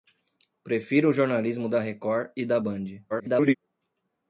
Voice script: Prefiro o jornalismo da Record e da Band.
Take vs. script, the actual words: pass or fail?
fail